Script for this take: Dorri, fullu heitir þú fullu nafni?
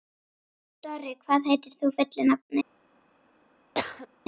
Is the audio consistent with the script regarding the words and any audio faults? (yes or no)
no